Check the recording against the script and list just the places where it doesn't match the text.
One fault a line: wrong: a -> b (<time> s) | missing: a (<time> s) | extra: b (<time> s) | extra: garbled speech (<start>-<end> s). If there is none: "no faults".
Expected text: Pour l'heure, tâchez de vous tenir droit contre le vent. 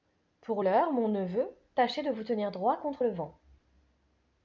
extra: mon neveu (0.9 s)